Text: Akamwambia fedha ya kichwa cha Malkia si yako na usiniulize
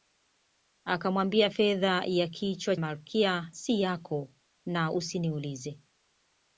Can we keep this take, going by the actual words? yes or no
no